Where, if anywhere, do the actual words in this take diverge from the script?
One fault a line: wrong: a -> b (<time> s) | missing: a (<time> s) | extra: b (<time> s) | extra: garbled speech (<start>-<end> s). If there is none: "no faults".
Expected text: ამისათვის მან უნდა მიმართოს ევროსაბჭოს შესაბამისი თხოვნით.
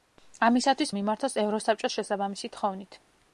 missing: მან უნდა (0.9 s)